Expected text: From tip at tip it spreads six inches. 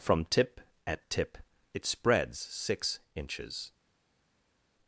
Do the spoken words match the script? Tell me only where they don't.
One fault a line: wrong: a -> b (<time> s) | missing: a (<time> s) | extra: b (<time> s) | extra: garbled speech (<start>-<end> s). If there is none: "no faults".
no faults